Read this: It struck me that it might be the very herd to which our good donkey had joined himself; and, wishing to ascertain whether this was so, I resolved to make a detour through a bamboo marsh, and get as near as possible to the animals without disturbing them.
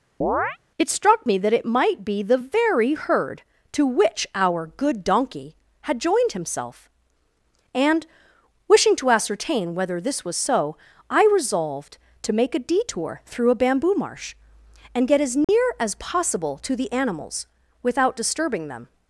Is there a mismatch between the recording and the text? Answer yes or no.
no